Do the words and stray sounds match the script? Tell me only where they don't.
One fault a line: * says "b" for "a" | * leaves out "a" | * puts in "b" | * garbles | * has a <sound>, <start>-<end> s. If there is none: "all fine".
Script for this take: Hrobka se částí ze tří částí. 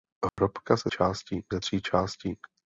* has a dropout, 0.3-0.4 s